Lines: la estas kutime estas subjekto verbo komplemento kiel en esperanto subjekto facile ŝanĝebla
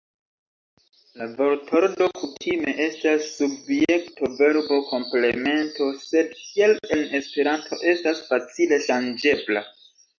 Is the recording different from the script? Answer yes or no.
yes